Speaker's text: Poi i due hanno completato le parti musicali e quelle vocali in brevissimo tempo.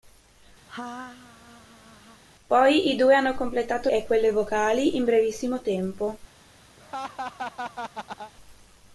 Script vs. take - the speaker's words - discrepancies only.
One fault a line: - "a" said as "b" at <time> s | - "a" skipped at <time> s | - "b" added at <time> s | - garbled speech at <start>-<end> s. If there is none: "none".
- "le parti musicali" skipped at 3.9 s